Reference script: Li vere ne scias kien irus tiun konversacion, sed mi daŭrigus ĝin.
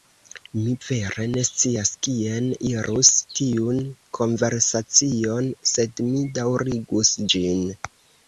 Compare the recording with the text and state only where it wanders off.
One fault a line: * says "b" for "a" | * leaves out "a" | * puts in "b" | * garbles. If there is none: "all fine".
* says "Mi" for "Li"